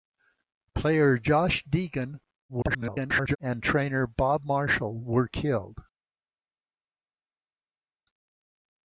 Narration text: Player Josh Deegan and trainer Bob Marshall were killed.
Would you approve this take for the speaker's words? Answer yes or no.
no